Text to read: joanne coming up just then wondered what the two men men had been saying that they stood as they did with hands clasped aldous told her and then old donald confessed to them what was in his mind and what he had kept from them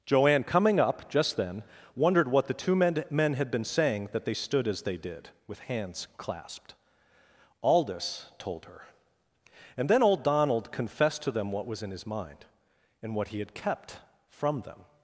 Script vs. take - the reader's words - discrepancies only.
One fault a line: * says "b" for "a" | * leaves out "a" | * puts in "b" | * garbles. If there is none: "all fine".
all fine